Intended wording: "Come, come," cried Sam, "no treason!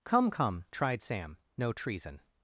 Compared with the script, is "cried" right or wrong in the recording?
wrong